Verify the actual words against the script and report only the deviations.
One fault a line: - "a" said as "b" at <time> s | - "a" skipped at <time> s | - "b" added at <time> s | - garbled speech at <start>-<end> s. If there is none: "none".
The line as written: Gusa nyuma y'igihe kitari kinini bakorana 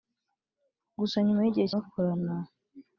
- "kitari kinini" skipped at 1.7 s